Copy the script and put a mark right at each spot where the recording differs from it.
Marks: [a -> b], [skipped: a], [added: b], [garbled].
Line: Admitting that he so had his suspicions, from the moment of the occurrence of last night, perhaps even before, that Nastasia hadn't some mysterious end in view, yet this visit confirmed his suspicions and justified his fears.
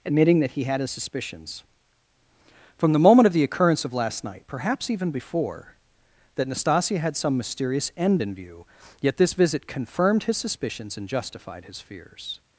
Admitting that he [skipped: so] had his suspicions, from the moment of the occurrence of last night, perhaps even before, that Nastasia [hadn't -> had] some mysterious end in view, yet this visit confirmed his suspicions and justified his fears.